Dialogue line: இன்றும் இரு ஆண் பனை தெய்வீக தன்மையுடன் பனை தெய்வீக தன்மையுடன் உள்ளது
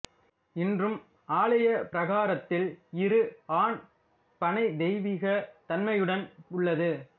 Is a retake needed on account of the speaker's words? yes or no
yes